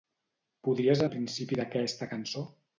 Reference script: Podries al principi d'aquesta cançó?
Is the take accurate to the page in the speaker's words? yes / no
yes